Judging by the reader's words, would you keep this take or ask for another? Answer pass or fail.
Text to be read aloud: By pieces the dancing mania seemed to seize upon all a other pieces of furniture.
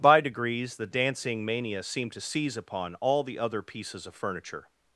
fail